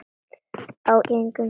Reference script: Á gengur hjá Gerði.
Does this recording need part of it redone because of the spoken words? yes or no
no